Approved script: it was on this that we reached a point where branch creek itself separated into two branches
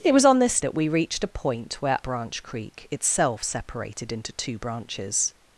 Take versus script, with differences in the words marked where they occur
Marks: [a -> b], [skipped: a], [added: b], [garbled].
it was on this that we reached a point where branch creek itself separated into two branches